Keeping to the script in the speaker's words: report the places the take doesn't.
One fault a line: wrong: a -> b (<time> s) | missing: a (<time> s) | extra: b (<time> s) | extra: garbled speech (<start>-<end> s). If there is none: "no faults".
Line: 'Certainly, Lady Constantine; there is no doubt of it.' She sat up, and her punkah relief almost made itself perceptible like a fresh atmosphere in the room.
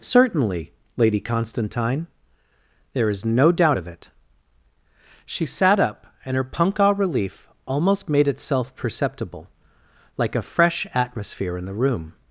no faults